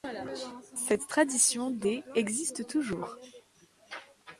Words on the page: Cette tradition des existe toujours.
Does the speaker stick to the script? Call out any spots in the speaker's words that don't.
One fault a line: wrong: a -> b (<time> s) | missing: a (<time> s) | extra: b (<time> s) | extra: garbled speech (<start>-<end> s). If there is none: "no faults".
no faults